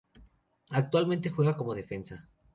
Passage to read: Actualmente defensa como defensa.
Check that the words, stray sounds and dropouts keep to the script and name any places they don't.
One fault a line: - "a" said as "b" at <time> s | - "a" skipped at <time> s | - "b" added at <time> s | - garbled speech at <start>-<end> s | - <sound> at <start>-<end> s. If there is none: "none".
- "defensa" said as "juega" at 1.3 s